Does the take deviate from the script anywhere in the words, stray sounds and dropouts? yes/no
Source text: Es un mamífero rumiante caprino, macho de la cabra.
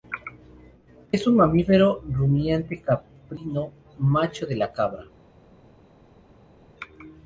no